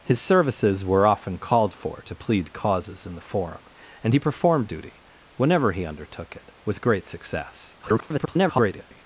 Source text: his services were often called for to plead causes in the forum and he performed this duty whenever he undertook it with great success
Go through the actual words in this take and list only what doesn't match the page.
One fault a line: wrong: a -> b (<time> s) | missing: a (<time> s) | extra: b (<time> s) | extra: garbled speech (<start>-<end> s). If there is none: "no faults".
missing: this (4.7 s)
extra: garbled speech (7.8-9.1 s)